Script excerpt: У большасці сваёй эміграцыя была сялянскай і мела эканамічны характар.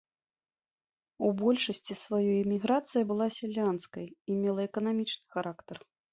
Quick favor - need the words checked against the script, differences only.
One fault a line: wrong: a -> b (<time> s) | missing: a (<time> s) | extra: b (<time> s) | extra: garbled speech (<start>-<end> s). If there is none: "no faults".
no faults